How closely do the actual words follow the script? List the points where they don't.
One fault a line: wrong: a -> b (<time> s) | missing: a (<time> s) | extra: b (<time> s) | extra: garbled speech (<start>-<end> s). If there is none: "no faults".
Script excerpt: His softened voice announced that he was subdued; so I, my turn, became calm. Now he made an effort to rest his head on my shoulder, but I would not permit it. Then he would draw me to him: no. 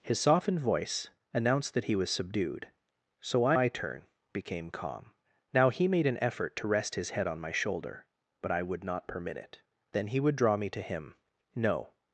no faults